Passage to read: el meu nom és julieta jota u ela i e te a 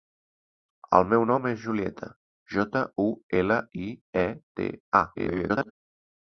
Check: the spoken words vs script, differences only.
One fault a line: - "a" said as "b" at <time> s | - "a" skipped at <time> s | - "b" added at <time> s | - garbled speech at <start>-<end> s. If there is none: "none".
- garbled speech at 5.1-5.7 s